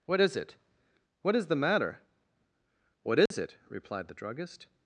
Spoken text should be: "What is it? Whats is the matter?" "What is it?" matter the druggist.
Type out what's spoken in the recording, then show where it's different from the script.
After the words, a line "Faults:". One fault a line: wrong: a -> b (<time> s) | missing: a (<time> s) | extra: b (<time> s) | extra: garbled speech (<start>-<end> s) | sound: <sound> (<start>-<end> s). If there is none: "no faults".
"What is it? What is the matter?" "What is it?" replied the druggist.
Faults:
wrong: Whats -> What (1.2 s)
sound: dropout (3.3-3.3 s)
wrong: matter -> replied (3.7 s)